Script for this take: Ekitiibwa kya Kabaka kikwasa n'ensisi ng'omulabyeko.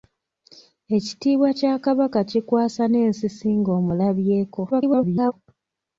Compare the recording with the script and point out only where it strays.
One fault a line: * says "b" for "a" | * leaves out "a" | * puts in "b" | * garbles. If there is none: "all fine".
* garbles